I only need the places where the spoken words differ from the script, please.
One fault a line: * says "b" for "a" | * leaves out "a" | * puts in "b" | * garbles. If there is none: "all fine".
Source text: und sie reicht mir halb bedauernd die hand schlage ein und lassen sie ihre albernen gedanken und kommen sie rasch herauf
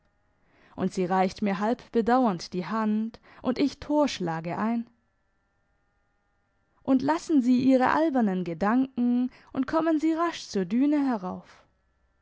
* puts in "und ich tor"
* puts in "zur düne"